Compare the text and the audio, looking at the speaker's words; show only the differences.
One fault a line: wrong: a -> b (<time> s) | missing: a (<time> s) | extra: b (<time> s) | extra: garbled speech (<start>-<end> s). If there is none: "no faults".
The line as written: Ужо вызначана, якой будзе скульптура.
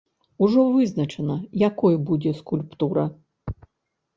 no faults